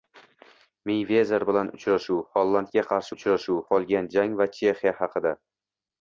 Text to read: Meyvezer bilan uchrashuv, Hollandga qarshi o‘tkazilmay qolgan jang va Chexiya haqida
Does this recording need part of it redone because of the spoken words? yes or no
yes